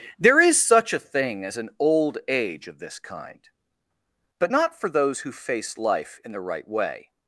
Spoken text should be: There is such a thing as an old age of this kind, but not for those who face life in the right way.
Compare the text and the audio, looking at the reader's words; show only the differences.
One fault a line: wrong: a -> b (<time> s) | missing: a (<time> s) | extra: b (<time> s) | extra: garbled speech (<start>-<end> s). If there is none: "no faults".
no faults